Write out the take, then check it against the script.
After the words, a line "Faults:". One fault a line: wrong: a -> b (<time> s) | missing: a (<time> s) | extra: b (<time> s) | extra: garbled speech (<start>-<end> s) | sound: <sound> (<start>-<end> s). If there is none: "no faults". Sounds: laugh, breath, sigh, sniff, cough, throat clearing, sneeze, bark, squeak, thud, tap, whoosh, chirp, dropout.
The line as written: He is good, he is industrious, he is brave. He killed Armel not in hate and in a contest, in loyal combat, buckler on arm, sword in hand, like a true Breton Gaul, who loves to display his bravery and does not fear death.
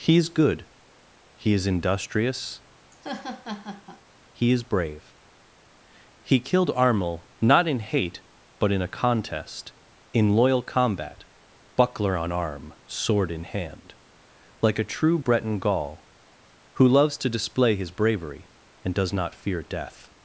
He is good, he is industrious, he is brave. He killed Armel not in hate but in a contest, in loyal combat, buckler on arm, sword in hand, like a true Breton Gaul, who loves to display his bravery and does not fear death.
Faults:
sound: laugh (2.9-4.0 s)
wrong: and -> but (8.6 s)